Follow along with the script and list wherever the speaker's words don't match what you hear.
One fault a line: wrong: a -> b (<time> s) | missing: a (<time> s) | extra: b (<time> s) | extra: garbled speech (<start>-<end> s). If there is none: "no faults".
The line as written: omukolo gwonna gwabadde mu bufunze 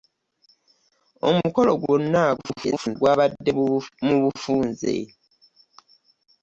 extra: garbled speech (2.4-3.0 s)